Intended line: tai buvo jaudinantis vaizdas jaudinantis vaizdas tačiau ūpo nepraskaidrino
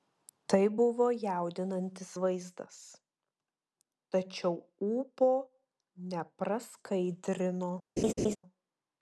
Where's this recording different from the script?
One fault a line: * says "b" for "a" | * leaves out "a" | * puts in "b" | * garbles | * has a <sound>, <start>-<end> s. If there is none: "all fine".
* leaves out "jaudinantis vaizdas"
* has a laugh, 8.0-8.4 s